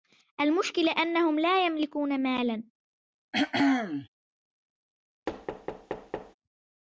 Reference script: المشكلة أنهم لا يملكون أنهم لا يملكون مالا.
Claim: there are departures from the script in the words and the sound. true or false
true